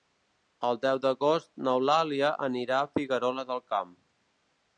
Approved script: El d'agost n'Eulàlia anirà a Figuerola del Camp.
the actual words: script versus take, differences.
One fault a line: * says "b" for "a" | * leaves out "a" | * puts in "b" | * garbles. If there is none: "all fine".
* puts in "deu"